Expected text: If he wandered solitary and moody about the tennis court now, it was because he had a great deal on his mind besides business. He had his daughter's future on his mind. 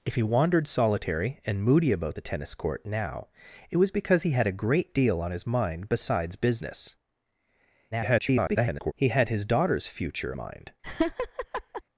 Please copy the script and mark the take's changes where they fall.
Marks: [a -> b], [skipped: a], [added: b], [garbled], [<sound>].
If he wandered solitary and moody about the tennis court now, it was because he had a great deal on his mind besides business. [garbled] He had his daughter's future [skipped: on his] mind. [laugh]